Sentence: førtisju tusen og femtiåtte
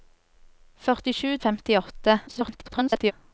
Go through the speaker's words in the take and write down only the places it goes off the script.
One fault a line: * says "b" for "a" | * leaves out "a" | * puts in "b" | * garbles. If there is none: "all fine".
* leaves out "tusen"
* garbles